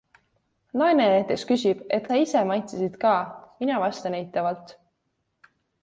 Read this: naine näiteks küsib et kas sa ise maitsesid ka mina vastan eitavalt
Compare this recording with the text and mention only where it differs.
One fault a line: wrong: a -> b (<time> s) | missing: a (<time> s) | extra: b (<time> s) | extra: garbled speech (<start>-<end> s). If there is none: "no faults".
missing: kas (2.1 s)